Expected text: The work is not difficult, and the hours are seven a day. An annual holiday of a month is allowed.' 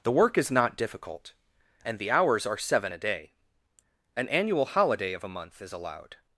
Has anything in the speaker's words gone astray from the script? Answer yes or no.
no